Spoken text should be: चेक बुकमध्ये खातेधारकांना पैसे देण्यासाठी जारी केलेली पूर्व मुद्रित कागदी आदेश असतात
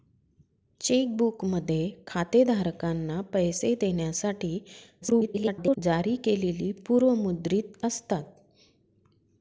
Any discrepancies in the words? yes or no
yes